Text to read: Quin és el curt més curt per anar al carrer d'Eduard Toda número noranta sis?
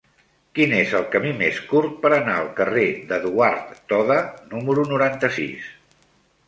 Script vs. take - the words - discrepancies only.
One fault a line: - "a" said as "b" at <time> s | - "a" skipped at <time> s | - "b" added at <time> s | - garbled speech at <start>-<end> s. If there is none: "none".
- "curt" said as "camí" at 1.1 s